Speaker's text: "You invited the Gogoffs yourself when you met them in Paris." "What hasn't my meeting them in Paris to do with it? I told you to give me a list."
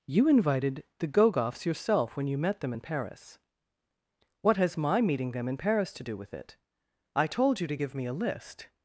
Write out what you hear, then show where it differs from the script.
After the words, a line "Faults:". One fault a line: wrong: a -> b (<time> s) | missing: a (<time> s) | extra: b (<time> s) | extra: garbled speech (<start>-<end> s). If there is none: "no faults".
"You invited the Gogoffs yourself when you met them in Paris." "What has my meeting them in Paris to do with it? I told you to give me a list."
Faults:
wrong: hasn't -> has (4.5 s)